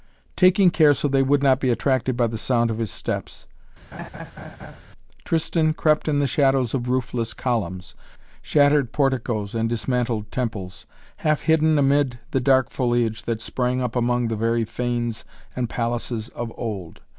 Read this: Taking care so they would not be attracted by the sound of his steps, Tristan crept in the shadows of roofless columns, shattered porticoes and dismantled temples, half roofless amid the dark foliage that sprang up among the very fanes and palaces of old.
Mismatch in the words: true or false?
true